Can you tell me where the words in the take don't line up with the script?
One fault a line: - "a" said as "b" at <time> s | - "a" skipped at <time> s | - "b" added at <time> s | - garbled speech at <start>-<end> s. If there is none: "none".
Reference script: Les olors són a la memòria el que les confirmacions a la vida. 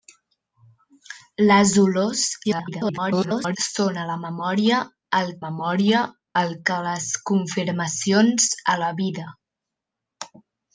- garbled speech at 2.4-3.6 s
- "memòria el" added at 5.4 s